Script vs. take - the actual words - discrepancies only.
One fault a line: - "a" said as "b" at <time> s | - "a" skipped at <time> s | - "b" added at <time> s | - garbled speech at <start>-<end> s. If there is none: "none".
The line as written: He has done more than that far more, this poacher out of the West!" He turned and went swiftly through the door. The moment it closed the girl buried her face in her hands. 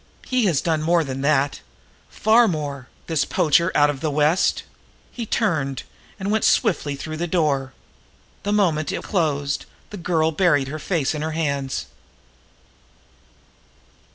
none